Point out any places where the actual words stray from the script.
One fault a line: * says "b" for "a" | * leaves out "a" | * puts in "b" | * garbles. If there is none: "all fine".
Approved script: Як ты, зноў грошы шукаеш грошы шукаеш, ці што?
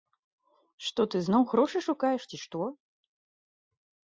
* says "Што" for "Як"
* leaves out "грошы шукаеш"